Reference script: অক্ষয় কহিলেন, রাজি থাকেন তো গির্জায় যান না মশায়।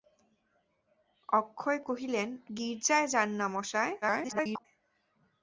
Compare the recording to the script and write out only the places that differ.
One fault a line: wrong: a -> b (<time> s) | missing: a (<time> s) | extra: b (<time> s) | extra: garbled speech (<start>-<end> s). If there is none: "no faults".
missing: রাজি থাকেন তো (2.3 s)
extra: garbled speech (4.0-4.7 s)